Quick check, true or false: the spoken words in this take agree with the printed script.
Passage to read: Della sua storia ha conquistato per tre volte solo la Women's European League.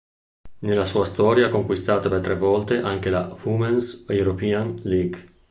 false